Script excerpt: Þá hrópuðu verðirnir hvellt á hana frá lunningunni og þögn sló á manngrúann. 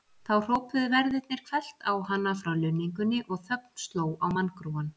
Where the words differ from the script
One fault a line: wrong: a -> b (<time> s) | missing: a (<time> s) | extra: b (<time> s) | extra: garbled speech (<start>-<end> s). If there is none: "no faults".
no faults